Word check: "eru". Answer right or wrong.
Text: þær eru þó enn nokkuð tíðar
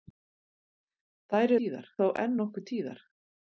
wrong